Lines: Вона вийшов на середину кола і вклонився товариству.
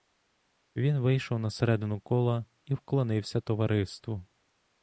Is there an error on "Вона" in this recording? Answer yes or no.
yes